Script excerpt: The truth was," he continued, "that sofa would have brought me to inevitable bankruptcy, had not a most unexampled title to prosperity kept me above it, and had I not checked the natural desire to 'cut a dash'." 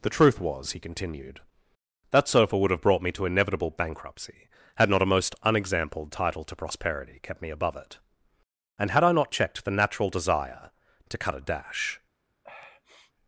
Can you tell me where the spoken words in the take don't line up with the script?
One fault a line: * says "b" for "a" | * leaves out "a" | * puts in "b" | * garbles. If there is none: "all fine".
all fine